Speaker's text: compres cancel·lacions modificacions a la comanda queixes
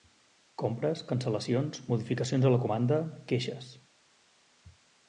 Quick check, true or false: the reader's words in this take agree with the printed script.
true